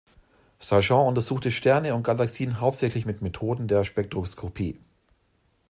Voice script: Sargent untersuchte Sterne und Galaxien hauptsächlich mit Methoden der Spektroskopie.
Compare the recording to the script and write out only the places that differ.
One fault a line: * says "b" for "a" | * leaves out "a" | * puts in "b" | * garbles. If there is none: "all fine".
all fine